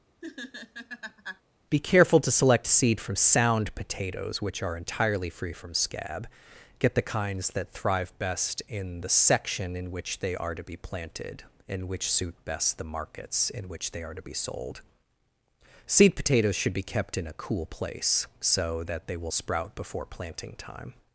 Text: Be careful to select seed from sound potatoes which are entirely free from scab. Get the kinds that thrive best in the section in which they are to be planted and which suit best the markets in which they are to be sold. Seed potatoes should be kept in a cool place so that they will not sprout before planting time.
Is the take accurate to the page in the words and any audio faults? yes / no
no